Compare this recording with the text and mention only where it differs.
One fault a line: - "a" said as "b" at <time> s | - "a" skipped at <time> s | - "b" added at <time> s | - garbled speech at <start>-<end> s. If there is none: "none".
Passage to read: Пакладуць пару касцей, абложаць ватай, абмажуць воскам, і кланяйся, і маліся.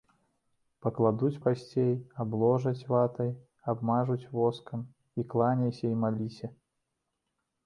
- "пару" skipped at 1.4 s